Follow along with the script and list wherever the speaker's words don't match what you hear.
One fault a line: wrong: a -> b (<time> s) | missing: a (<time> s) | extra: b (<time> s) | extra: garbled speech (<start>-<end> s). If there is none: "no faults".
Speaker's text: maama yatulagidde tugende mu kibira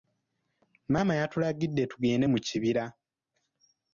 no faults